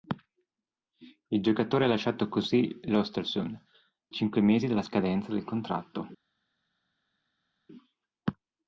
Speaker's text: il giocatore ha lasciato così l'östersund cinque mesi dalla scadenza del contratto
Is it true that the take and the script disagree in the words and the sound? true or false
false